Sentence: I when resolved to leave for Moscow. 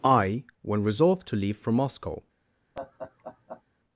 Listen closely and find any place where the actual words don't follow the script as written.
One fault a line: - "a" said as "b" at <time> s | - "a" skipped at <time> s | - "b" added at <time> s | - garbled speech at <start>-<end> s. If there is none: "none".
none